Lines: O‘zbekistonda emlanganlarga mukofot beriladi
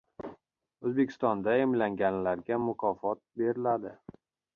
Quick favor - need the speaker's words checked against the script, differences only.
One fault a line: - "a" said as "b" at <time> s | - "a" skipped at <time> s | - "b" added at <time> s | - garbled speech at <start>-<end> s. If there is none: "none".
none